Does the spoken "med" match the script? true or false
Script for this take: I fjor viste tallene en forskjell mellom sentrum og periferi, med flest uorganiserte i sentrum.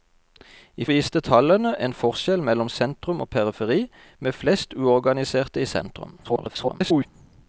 true